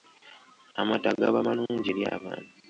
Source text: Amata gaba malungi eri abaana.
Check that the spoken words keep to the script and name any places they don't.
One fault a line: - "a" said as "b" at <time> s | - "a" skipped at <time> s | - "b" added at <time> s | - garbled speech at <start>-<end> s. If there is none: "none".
none